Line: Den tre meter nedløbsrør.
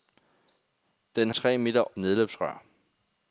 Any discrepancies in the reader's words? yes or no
no